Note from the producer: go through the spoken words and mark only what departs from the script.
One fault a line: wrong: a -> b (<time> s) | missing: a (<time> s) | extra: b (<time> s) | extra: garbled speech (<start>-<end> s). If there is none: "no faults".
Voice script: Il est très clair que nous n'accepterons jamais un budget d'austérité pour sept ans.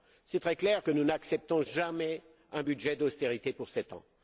no faults